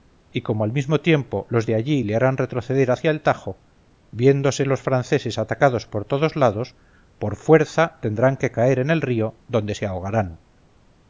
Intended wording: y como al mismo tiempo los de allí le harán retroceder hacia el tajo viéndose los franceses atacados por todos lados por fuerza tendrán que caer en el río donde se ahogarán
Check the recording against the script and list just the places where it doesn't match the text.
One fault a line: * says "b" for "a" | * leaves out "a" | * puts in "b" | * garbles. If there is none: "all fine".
all fine